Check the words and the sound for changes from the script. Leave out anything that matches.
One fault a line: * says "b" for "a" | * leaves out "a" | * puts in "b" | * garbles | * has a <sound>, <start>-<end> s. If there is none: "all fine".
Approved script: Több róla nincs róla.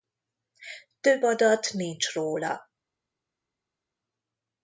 * says "adat" for "róla"